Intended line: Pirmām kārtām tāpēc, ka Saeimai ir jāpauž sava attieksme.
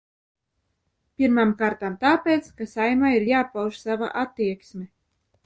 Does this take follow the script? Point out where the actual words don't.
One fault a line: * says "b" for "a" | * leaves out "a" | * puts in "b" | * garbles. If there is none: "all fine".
all fine